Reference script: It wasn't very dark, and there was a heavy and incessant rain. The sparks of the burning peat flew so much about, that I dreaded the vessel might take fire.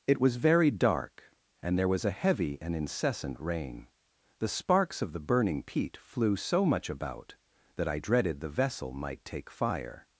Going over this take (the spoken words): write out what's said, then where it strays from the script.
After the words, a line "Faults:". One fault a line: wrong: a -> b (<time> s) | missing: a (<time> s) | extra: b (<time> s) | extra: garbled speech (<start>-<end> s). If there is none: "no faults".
It was very dark, and there was a heavy and incessant rain. The sparks of the burning peat flew so much about, that I dreaded the vessel might take fire.
Faults:
wrong: wasn't -> was (0.2 s)